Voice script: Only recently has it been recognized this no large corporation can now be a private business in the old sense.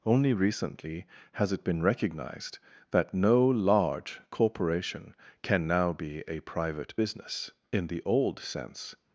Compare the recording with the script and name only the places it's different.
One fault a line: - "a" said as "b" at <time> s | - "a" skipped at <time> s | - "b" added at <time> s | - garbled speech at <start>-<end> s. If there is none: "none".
- "this" said as "that" at 2.9 s